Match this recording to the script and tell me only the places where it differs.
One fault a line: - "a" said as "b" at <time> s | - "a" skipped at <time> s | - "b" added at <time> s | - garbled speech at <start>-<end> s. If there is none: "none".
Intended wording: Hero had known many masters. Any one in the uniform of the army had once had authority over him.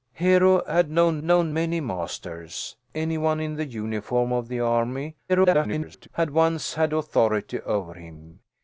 - "known" added at 1.2 s
- garbled speech at 5.3-6.1 s